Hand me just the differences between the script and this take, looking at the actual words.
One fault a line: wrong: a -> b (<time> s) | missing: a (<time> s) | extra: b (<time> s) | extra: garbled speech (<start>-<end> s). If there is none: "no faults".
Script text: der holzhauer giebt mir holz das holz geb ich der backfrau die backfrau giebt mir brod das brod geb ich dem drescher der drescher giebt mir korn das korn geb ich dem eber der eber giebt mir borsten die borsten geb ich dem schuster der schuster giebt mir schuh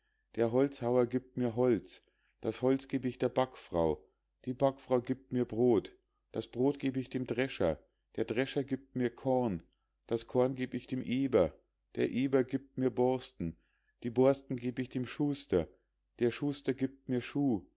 no faults